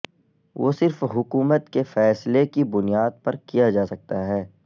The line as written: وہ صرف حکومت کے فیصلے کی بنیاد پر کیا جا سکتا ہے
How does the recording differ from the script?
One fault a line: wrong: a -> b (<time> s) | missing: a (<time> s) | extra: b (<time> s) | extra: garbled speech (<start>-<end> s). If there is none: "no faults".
no faults